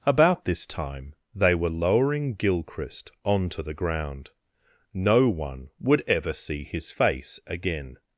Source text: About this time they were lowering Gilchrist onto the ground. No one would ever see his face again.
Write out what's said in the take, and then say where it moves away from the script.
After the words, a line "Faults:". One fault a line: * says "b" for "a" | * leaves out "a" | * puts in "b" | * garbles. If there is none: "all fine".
About this time they were lowering Gilchrist onto the ground. No one would ever see his face again.
Faults:
all fine